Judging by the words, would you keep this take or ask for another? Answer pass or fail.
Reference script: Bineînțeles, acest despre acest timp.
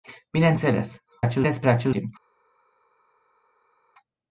pass